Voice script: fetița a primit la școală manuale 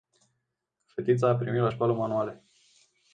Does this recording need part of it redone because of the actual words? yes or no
no